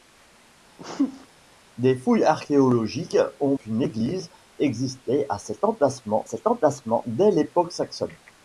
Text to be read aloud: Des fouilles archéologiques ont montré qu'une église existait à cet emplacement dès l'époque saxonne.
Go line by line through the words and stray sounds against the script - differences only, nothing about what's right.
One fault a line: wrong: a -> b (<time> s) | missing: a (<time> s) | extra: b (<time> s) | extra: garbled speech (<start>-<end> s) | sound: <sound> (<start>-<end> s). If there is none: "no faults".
sound: sneeze (0.8-1.3 s)
missing: montré (3.5 s)
extra: cet emplacement (6.2 s)